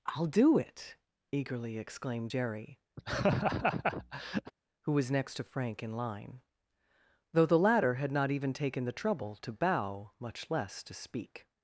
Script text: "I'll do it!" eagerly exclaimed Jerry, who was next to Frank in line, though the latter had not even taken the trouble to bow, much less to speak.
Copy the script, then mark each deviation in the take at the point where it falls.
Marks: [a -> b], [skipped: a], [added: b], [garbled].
"I'll do it!" eagerly exclaimed Jerry, who was next to Frank in line, though the latter had not even taken the trouble to bow, much less to speak.